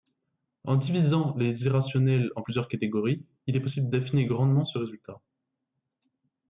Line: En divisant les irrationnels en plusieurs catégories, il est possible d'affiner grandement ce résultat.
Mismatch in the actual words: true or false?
false